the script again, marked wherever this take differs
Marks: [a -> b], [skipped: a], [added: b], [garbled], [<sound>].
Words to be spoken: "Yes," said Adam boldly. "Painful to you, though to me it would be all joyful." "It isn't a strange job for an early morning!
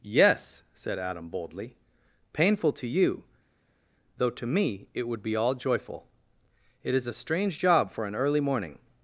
"Yes," said Adam boldly. "Painful to you, though to me it would be all joyful." "It [isn't -> is] a strange job for an early morning!